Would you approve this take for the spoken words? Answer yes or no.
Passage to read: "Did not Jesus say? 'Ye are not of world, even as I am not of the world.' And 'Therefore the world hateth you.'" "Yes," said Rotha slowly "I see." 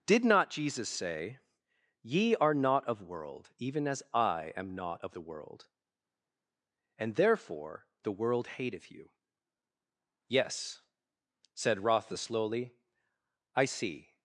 yes